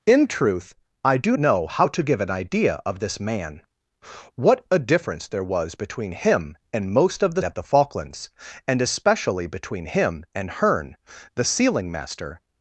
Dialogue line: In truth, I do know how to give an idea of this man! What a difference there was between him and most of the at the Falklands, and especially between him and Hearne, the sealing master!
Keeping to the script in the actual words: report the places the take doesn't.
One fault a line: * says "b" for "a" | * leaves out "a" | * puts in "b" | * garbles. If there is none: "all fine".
all fine